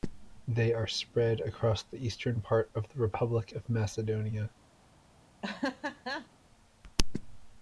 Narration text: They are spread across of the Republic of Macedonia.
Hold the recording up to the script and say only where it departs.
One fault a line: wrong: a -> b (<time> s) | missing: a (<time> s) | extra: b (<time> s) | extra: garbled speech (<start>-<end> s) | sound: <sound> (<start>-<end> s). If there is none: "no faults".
extra: the eastern part (1.8 s)
sound: laugh (5.4-6.3 s)